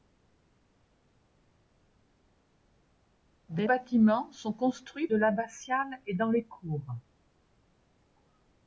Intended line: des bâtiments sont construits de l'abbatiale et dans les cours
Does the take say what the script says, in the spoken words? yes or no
yes